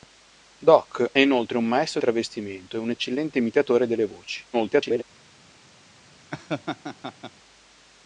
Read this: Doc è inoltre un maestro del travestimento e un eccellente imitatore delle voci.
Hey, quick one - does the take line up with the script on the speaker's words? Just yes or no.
no